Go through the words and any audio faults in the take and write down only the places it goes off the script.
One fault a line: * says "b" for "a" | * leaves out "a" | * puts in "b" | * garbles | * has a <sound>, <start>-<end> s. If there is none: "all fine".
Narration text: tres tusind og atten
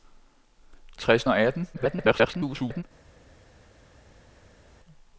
* leaves out "tusind"
* garbles